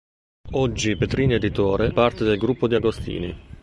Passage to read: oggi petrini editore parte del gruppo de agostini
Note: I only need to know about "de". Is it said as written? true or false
true